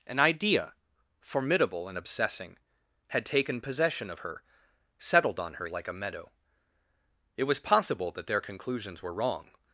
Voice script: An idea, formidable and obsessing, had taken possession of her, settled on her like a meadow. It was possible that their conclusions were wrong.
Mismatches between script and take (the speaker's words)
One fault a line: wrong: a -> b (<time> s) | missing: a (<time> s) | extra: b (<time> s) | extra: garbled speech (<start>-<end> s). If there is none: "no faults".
no faults